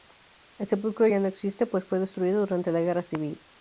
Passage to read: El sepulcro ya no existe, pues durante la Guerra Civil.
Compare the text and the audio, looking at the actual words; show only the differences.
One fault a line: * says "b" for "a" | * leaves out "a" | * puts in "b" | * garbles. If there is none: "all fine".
* puts in "fue destruido"